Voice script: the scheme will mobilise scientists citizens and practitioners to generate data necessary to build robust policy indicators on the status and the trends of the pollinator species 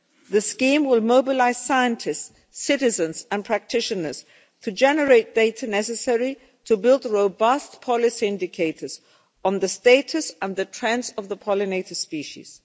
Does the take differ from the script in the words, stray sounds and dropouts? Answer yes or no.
no